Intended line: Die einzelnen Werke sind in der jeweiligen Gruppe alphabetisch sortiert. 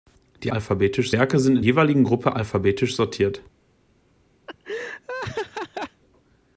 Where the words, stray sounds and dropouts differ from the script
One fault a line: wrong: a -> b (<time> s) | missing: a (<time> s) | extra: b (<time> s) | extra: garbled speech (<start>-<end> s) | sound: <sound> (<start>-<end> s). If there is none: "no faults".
wrong: einzelnen -> alphabetisch (0.5 s)
missing: der (1.7 s)
sound: laugh (4.5-6.0 s)